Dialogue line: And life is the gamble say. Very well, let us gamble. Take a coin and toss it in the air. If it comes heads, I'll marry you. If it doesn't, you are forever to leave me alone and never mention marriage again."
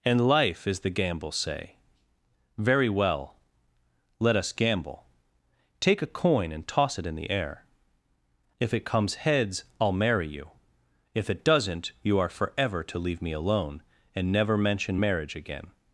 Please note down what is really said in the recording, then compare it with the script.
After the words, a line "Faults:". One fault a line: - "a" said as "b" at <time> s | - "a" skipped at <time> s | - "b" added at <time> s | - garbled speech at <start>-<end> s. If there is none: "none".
And life is the gamble say. Very well, let us gamble. Take a coin and toss it in the air. If it comes heads, I'll marry you. If it doesn't, you are forever to leave me alone and never mention marriage again."
Faults:
none